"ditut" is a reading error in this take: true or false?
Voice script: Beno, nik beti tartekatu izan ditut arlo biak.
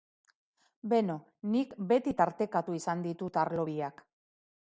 false